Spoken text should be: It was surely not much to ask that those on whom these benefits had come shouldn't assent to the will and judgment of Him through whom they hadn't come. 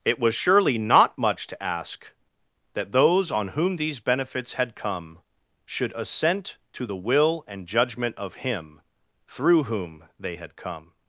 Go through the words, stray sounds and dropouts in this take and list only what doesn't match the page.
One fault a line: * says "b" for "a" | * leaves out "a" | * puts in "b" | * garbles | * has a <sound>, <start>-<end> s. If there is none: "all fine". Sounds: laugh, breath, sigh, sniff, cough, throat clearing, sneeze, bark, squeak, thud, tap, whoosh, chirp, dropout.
* says "should" for "shouldn't"
* says "had" for "hadn't"